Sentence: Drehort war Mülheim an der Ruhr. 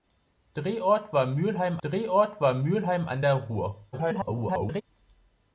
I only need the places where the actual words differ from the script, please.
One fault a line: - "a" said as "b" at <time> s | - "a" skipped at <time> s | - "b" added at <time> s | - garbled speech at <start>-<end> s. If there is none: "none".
- "drehort war Mülheim" added at 1.8 s
- garbled speech at 3.9-4.8 s